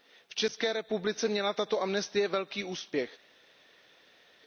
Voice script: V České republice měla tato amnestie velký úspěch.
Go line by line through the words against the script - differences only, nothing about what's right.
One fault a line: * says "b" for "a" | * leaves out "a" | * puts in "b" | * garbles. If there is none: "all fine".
all fine